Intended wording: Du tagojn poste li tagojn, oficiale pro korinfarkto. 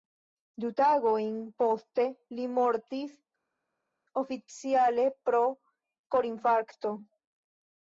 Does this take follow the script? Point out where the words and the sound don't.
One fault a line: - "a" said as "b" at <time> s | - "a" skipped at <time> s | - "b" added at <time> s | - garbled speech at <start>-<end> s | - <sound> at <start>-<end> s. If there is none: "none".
- "tagojn" said as "mortis" at 2.6 s